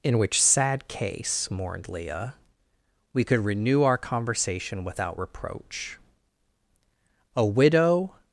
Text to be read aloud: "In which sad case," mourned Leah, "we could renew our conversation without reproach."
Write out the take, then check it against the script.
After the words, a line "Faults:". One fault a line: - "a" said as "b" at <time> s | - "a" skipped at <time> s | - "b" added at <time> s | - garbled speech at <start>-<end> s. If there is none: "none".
"In which sad case," mourned Leah, "we could renew our conversation without reproach." "A widow
Faults:
- "A widow" added at 7.3 s